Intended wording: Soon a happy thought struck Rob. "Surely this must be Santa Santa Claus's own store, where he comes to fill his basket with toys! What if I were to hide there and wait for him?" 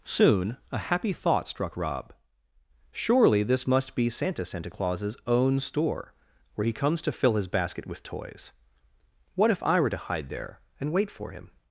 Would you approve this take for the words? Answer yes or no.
yes